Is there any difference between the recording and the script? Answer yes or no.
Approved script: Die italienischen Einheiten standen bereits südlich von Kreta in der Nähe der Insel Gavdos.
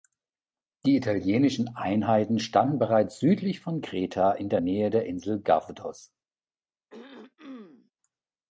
no